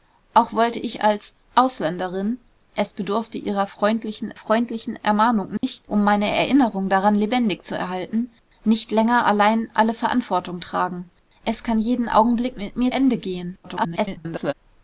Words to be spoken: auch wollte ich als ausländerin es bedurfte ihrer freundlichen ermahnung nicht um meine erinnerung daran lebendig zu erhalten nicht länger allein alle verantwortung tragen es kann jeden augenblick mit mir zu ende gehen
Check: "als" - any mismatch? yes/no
no